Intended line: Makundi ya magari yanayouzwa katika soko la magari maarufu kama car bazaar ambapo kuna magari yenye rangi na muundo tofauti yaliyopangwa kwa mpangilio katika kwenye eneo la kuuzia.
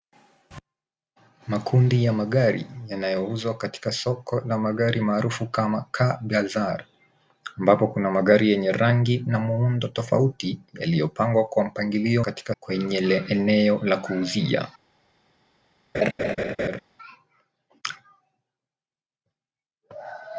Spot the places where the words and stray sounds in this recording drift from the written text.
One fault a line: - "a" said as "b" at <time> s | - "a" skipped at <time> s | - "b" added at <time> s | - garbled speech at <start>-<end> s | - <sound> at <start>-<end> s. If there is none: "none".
- laugh at 15.9-16.8 s